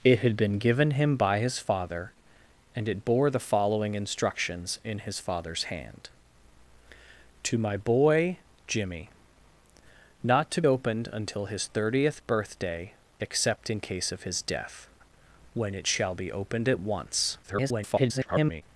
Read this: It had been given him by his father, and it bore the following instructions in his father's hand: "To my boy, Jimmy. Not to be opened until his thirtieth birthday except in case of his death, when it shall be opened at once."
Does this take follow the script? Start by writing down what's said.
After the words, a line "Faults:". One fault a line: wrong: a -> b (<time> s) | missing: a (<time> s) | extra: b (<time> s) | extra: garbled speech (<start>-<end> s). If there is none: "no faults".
It had been given him by his father, and it bore the following instructions in his father's hand: "To my boy, Jimmy. Not to opened until his thirtieth birthday except in case of his death, when it shall be opened at once." [garbled]
Faults:
missing: be (10.6 s)
extra: garbled speech (17.4-18.6 s)